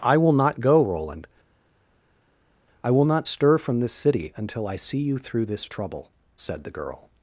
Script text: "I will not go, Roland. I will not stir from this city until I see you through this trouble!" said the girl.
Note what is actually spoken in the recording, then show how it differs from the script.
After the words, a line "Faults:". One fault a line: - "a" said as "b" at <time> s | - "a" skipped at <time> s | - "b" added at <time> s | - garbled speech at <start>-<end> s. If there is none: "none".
"I will not go, Roland. I will not stir from this city until I see you through this trouble!" said the girl.
Faults:
none